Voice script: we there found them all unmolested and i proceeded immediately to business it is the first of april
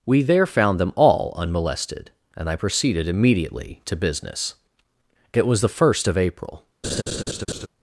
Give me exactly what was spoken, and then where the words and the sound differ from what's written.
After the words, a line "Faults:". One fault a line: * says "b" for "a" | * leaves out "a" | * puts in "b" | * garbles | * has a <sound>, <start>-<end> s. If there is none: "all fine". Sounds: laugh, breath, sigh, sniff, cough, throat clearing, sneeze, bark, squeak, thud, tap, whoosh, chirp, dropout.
we there found them all unmolested and i proceeded immediately to business it was the first of april
Faults:
* says "was" for "is"
* has a laugh, 6.8-7.7 s